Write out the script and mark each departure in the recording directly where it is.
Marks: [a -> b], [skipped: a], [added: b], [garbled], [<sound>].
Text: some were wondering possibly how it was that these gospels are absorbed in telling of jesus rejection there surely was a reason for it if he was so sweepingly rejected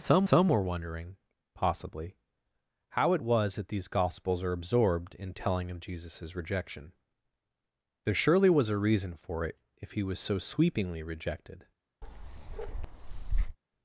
some [added: some] were wondering possibly how it was that these gospels are absorbed in telling of jesus rejection there surely was a reason for it if he was so sweepingly rejected [bark]